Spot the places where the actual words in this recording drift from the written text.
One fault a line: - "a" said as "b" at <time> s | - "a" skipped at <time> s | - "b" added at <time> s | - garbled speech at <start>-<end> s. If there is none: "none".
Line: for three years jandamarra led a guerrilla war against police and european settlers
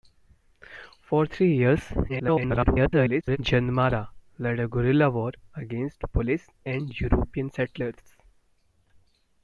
- garbled speech at 2.1-3.4 s